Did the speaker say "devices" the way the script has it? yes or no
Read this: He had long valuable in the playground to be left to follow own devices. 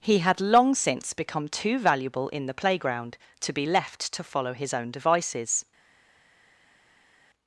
yes